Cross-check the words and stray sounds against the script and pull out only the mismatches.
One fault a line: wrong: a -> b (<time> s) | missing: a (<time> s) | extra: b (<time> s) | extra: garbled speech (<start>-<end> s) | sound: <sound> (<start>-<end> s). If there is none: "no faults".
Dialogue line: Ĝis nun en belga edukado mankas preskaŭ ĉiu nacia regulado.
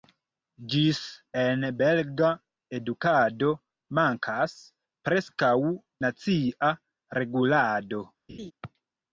missing: nun (1.0 s)
missing: ĉiu (5.5 s)
sound: laugh (8.3-8.5 s)